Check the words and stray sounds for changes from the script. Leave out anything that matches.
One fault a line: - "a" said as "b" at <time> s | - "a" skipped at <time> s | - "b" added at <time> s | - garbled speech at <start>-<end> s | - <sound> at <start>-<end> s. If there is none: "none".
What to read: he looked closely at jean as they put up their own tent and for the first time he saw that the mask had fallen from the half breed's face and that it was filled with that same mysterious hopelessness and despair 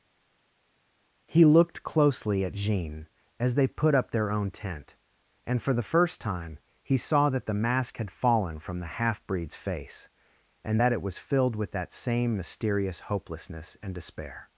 none